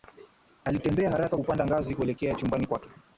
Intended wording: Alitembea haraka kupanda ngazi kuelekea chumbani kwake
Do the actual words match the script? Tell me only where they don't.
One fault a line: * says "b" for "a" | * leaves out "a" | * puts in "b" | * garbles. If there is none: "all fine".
all fine